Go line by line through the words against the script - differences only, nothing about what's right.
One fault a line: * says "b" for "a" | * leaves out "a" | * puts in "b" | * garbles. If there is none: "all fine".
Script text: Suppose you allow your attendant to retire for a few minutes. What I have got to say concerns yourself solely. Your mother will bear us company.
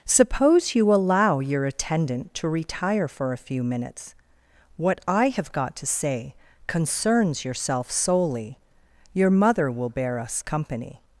all fine